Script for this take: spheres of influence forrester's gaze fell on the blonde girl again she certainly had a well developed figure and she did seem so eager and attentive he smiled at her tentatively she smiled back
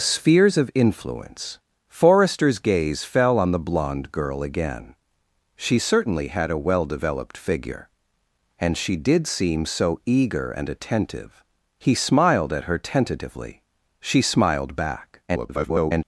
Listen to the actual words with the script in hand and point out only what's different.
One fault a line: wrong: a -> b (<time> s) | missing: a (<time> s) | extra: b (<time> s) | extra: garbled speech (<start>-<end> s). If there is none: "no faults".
extra: garbled speech (15.3-16.0 s)